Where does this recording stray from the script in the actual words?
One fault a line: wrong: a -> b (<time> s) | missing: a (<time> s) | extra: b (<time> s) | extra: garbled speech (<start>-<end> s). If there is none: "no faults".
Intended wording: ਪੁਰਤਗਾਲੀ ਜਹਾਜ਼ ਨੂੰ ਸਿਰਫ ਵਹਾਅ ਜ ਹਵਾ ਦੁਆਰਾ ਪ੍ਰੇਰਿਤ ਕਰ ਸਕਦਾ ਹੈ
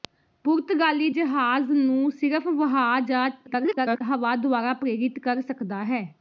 extra: garbled speech (3.5-4.0 s)